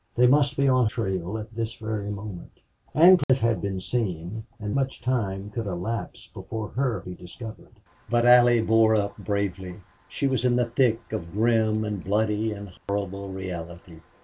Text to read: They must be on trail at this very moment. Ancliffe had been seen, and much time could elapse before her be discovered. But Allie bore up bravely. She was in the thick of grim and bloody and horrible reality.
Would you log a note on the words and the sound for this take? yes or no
yes